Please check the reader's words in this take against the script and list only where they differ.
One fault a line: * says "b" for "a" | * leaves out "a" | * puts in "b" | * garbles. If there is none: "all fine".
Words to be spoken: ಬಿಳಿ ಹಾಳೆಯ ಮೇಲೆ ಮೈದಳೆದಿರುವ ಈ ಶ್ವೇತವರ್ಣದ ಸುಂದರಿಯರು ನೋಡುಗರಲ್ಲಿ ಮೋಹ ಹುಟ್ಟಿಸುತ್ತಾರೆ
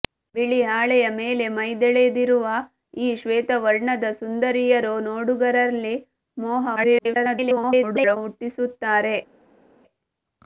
* garbles